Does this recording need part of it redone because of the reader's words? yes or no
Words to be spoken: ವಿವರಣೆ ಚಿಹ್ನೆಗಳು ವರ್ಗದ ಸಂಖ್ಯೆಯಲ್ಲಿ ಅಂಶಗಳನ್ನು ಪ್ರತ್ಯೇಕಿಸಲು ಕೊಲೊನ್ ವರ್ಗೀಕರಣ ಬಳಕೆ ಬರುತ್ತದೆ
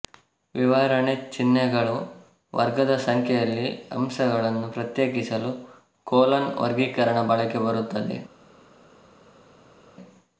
no